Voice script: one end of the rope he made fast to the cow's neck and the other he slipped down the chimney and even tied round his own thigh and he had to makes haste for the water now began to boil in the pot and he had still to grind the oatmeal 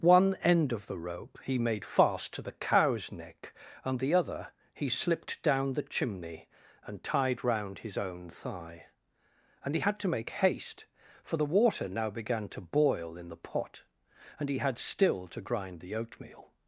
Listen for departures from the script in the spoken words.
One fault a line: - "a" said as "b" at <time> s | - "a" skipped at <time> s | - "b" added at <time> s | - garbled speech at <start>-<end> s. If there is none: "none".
- "even" skipped at 7.0 s
- "makes" said as "make" at 10.1 s